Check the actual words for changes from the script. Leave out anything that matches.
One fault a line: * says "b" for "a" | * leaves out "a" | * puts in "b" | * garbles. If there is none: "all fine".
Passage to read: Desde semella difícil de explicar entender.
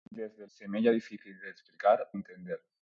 all fine